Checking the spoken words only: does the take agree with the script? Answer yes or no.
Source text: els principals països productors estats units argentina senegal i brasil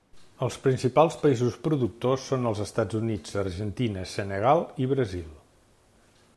no